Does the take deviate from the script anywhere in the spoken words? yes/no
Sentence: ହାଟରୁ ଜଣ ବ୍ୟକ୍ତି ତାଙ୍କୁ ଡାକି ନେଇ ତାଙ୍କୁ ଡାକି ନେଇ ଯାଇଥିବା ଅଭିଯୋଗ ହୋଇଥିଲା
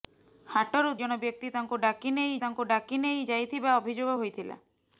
no